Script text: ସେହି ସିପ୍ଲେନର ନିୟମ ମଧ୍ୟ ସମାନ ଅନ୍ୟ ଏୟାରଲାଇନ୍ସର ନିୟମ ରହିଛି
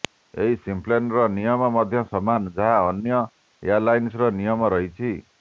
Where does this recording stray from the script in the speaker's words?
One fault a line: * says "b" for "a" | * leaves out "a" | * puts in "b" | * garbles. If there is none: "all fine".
* says "ଏହି" for "ସେହି"
* puts in "ଯାହା"